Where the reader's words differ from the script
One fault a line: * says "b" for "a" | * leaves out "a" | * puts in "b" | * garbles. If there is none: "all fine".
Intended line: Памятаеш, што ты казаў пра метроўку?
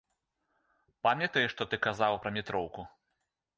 all fine